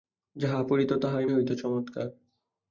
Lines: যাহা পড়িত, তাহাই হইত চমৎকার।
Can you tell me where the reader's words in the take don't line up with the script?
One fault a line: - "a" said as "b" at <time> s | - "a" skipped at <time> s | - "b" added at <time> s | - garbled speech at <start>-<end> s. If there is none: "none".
none